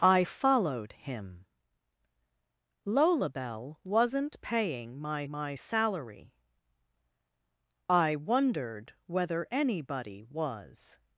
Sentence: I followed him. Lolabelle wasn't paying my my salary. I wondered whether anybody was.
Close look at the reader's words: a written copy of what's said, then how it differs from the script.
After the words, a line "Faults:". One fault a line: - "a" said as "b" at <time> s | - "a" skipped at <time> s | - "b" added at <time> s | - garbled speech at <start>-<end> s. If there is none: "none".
I followed him. Lolabelle wasn't paying my my salary. I wondered whether anybody was.
Faults:
none